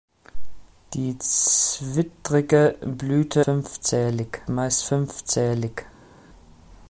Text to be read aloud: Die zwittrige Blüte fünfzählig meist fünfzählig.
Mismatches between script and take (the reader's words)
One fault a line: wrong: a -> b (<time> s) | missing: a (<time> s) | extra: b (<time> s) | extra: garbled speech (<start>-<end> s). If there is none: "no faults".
no faults